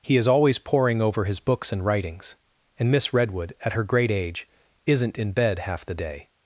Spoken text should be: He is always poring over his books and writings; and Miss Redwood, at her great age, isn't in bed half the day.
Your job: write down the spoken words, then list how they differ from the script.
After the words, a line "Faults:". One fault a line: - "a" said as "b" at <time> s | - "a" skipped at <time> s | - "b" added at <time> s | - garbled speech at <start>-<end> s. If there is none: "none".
He is always poring over his books and writings; and Miss Redwood, at her great age, isn't in bed half the day.
Faults:
none